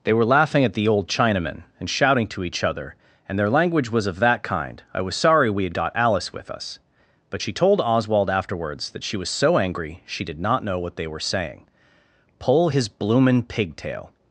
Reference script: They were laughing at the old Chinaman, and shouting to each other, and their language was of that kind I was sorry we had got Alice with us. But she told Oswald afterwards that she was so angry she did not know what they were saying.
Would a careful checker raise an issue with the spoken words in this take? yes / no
yes